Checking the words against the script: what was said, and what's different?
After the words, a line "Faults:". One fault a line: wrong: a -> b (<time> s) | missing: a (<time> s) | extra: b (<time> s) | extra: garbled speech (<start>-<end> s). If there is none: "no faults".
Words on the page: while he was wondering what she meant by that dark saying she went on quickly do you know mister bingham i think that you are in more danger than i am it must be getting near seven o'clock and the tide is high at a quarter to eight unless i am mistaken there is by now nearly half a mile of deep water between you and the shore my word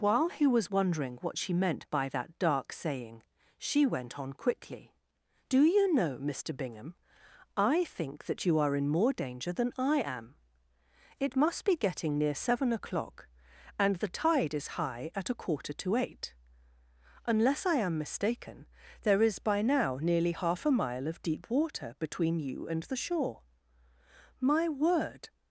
while he was wondering what she meant by that dark saying she went on quickly do you know mister bingham i think that you are in more danger than i am it must be getting near seven o'clock and the tide is high at a quarter to eight unless i am mistaken there is by now nearly half a mile of deep water between you and the shore my word
Faults:
no faults